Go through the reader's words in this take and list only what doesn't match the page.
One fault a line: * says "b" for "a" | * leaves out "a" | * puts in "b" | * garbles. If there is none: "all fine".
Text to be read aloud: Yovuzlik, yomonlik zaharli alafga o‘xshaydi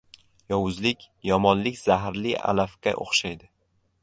all fine